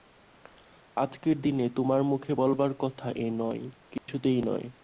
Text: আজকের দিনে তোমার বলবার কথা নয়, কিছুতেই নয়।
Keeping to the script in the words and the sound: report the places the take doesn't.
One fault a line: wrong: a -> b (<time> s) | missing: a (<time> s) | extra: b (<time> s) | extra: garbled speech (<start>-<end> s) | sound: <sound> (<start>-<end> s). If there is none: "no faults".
extra: মুখে (2.0 s)
extra: এ (3.2 s)
sound: dropout (4.0-4.1 s)